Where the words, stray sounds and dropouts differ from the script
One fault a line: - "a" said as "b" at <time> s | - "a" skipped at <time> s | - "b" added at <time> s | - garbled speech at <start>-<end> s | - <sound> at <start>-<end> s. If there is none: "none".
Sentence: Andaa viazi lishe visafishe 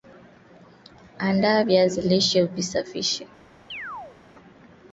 - chirp at 3.7-4.2 s